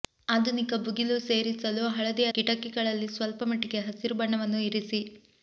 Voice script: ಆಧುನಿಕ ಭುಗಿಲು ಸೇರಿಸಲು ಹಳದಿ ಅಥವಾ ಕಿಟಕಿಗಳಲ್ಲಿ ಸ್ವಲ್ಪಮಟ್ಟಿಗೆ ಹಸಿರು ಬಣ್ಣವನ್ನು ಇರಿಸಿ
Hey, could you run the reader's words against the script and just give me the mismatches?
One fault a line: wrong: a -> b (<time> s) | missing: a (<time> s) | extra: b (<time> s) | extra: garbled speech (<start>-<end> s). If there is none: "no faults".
missing: ಅಥವಾ (2.2 s)